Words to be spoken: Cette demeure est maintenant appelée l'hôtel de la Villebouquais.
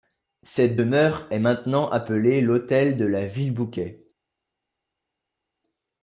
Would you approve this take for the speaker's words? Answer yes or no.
yes